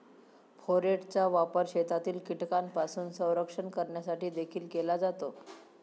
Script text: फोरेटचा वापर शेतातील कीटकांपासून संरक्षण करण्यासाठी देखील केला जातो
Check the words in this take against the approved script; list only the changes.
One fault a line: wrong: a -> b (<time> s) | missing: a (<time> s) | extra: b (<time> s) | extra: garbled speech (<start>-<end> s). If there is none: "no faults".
no faults